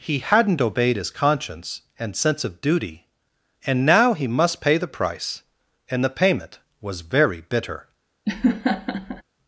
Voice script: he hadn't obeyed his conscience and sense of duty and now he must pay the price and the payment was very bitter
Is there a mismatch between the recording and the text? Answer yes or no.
no